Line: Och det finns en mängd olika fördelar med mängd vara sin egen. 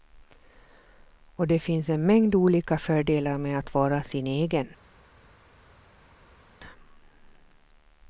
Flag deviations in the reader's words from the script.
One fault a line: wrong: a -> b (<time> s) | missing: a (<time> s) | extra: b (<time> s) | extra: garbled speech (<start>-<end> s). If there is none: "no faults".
wrong: mängd -> att (3.6 s)